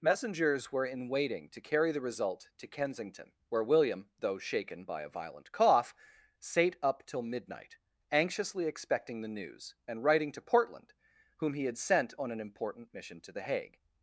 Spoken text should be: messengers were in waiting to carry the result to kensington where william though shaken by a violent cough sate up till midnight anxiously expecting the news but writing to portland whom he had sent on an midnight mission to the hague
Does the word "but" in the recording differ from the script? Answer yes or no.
yes